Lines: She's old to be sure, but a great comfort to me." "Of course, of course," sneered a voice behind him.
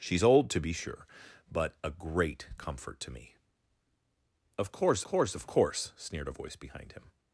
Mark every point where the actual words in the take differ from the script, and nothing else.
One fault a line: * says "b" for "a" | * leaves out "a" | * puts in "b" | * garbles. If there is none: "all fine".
* puts in "course"